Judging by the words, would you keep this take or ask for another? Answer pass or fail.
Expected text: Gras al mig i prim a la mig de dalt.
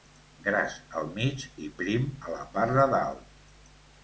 fail